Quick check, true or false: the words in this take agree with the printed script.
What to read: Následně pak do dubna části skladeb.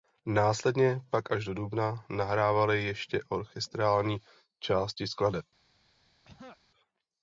false